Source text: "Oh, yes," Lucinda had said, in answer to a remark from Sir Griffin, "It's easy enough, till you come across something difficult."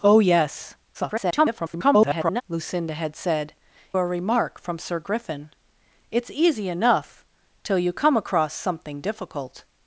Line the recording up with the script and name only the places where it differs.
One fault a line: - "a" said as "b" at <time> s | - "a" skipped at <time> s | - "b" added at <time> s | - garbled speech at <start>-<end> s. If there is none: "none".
- garbled speech at 0.9-2.4 s
- "in answer to" skipped at 3.5 s